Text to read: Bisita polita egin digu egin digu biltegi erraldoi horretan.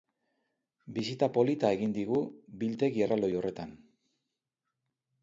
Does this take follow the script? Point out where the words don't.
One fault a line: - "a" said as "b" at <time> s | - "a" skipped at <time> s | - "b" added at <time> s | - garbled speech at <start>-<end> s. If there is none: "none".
- "egin digu" skipped at 2.2 s